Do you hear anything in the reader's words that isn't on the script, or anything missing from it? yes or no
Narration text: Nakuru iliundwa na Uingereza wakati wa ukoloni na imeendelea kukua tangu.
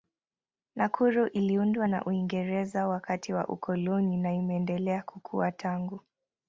no